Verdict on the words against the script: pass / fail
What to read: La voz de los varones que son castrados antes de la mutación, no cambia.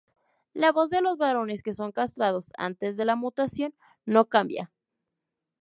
pass